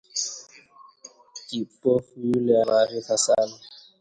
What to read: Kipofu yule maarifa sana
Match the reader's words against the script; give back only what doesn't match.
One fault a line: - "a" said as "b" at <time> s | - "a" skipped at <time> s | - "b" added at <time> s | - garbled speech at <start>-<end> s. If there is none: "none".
none